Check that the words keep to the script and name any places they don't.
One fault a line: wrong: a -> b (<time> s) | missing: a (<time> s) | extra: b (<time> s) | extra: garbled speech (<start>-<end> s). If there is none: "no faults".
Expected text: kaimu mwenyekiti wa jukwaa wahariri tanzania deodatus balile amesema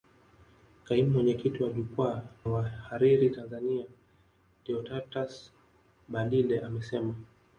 no faults